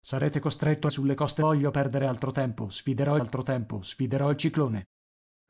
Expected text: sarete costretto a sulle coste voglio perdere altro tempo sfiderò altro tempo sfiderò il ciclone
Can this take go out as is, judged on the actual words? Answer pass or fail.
pass